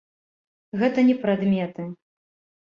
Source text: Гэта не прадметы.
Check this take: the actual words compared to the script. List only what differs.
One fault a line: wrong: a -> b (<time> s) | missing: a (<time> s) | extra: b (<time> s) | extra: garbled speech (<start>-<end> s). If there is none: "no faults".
no faults